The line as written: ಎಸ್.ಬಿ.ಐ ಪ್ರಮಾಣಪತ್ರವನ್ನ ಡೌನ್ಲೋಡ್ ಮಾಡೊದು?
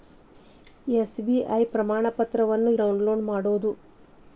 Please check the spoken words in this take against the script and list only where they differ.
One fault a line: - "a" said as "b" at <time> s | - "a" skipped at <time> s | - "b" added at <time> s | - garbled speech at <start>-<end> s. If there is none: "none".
none